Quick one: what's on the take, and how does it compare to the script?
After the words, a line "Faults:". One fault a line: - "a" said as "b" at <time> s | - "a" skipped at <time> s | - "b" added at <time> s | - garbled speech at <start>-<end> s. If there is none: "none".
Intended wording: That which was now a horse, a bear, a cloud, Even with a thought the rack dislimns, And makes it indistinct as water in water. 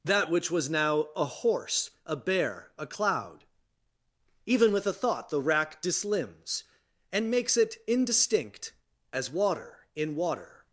That which was now a horse, a bear, a cloud, Even with a thought the rack dislimns, And makes it indistinct as water in water.
Faults:
none